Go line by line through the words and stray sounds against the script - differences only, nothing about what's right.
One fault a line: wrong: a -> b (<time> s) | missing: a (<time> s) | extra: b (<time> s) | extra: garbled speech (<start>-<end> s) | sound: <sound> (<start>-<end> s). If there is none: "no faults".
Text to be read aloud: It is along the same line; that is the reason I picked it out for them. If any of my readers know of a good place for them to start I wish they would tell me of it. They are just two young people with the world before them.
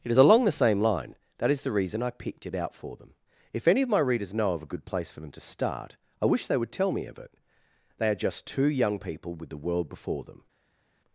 no faults